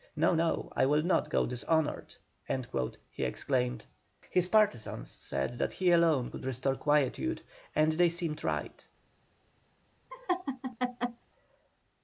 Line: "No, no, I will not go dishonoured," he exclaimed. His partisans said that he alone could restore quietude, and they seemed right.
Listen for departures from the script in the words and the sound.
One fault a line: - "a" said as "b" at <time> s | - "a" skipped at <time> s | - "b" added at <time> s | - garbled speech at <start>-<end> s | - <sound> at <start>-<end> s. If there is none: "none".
- laugh at 10.1-11.2 s